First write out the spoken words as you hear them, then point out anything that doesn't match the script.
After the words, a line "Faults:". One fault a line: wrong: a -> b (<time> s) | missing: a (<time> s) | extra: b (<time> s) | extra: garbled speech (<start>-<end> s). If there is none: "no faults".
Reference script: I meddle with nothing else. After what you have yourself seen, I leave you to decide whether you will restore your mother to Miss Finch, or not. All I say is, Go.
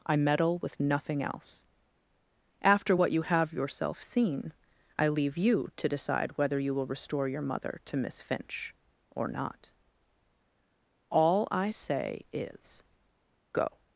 I meddle with nothing else. After what you have yourself seen, I leave you to decide whether you will restore your mother to Miss Finch, or not. All I say is, Go.
Faults:
no faults